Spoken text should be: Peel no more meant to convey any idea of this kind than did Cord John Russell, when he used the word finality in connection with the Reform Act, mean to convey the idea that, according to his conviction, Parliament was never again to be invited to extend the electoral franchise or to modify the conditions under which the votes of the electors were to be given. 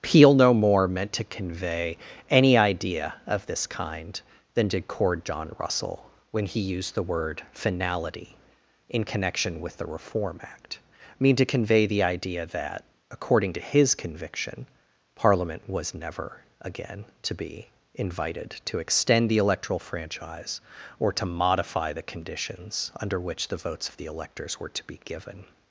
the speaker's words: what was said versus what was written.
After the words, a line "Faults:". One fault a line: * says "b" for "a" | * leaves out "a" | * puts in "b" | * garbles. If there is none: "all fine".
Peel no more meant to convey any idea of this kind than did Cord John Russell, when he used the word finality in connection with the Reform Act, mean to convey the idea that, according to his conviction, Parliament was never again to be invited to extend the electoral franchise or to modify the conditions under which the votes of the electors were to be given.
Faults:
all fine